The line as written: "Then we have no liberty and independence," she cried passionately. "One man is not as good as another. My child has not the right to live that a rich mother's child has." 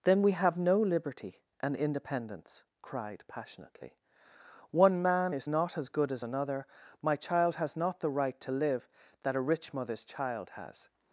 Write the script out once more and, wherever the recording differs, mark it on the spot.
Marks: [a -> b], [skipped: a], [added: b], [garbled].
"Then we have no liberty and independence," [skipped: she] cried passionately. "One man is not as good as another. My child has not the right to live that a rich mother's child has."